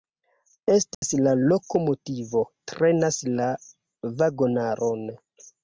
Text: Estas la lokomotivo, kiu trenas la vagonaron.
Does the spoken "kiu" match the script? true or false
false